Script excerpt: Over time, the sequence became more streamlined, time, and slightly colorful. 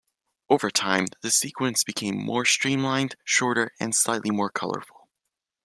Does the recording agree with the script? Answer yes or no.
no